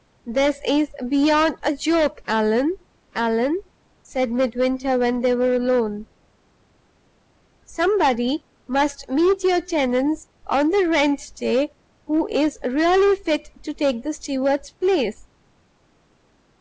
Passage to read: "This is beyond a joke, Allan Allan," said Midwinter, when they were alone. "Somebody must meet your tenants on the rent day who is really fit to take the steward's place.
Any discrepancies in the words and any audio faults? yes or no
no